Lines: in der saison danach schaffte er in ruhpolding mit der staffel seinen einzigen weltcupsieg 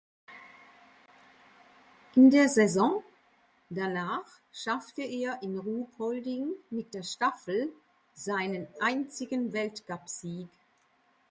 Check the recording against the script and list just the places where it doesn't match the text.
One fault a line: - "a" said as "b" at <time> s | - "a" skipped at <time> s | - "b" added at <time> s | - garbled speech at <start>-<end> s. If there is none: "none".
none